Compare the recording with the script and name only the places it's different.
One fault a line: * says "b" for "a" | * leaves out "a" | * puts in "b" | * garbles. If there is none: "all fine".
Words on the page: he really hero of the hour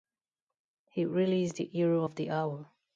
* puts in "is the"